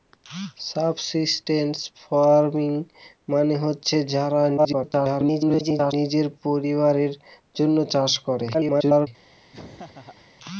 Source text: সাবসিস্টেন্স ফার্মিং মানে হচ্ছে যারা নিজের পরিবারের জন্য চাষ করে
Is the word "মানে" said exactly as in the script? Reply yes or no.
yes